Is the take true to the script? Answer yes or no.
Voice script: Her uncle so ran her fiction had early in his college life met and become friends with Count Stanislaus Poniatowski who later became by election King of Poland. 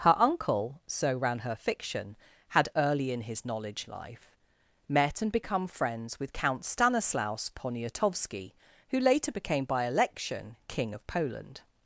no